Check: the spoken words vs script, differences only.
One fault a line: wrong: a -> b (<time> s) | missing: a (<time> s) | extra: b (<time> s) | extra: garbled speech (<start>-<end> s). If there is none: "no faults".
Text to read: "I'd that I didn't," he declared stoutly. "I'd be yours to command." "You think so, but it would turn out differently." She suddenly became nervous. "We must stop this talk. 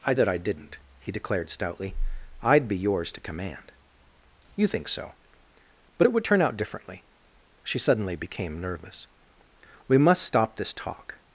no faults